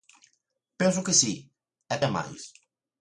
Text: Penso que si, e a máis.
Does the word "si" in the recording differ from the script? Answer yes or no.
no